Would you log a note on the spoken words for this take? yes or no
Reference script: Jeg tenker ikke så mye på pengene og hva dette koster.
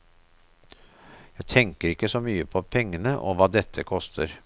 no